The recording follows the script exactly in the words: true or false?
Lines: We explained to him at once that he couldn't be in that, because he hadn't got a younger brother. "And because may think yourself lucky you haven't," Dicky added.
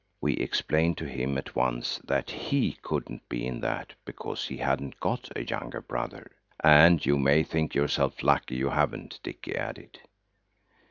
false